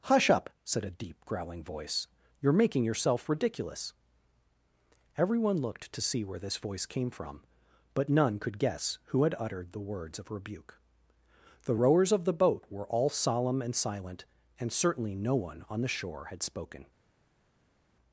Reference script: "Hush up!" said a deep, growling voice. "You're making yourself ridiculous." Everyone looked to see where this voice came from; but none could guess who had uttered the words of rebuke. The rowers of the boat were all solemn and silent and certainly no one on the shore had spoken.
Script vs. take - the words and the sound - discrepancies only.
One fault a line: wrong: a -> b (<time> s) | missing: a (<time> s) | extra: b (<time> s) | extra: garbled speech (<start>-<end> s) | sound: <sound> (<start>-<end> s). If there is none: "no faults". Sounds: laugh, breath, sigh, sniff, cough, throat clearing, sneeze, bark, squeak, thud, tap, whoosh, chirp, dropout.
no faults